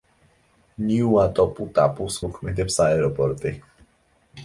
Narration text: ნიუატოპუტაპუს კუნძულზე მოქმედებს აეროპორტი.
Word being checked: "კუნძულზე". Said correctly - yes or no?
no